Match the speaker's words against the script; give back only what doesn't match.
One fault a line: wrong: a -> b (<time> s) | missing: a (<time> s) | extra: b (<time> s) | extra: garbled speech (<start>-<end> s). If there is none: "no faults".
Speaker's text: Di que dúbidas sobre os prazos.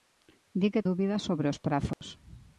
no faults